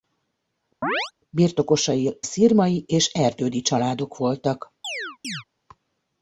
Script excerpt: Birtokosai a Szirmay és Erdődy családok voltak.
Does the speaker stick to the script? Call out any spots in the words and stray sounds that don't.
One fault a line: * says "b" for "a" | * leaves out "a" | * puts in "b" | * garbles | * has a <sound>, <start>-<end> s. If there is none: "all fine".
* has a chirp, 0.8-1.1 s
* leaves out "a"
* has a chirp, 4.8-5.4 s